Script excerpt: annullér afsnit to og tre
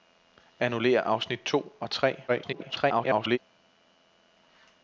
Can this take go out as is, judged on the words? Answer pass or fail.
fail